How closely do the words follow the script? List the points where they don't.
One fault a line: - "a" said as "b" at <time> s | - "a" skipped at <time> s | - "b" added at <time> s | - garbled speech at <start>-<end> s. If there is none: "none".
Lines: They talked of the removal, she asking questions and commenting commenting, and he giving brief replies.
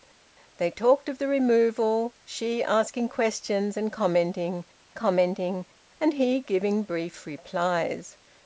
none